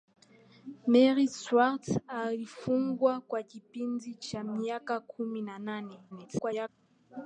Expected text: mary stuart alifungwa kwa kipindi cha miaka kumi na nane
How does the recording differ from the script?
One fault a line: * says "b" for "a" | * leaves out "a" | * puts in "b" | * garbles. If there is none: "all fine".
* garbles